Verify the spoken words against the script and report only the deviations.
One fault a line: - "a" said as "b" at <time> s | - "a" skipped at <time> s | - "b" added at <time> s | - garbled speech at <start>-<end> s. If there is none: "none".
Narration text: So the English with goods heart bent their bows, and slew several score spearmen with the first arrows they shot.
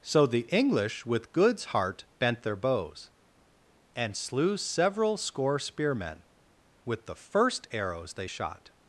none